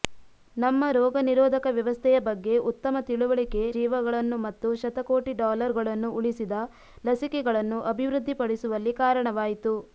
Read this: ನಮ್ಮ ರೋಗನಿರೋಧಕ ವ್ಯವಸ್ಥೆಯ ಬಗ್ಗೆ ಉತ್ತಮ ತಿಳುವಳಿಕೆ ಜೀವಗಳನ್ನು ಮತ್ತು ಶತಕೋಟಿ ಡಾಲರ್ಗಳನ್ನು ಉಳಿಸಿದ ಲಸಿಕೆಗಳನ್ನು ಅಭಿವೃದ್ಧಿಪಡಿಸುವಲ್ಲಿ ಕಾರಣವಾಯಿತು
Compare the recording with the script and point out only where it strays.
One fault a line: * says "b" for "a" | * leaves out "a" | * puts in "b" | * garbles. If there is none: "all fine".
all fine